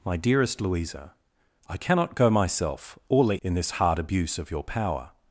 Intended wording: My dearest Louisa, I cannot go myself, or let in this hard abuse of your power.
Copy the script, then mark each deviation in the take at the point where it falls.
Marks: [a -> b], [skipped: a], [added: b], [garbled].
My dearest Louisa, I cannot go myself, or let in this hard abuse of your power.